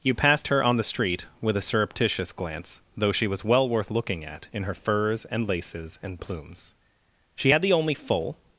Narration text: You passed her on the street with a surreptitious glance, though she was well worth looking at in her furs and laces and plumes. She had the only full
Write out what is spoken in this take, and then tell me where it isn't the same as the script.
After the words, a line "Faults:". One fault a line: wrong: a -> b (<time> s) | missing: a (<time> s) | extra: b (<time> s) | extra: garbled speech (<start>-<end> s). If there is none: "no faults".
You passed her on the street with a surreptitious glance, though she was well worth looking at in her furs and laces and plumes. She had the only full
Faults:
no faults